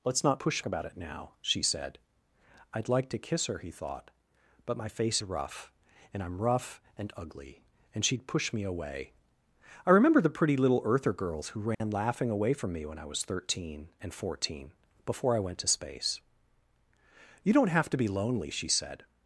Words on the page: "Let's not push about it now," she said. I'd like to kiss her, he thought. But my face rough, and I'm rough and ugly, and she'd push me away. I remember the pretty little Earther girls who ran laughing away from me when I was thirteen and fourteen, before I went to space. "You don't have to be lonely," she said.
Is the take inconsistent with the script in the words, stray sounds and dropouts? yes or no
yes